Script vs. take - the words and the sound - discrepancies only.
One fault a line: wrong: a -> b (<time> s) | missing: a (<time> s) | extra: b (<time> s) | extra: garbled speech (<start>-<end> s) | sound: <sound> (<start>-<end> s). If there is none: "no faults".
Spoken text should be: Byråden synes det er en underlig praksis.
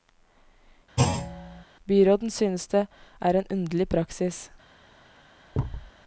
sound: thud (1.0-1.6 s)
sound: thud (5.5-5.9 s)